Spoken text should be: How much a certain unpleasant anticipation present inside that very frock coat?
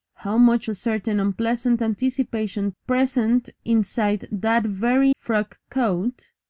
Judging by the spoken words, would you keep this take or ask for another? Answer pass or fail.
pass